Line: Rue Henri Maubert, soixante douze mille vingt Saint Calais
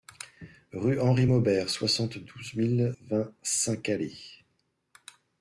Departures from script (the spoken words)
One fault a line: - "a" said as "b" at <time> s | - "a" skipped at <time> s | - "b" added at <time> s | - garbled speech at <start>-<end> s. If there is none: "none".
none